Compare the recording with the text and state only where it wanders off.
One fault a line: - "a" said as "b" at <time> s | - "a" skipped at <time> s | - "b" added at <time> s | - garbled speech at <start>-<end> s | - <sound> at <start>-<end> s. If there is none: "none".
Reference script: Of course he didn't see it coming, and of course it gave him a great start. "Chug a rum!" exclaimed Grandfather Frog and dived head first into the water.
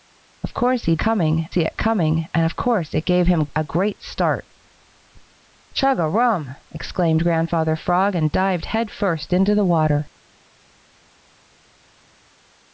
- "didn't" said as "coming" at 1.0 s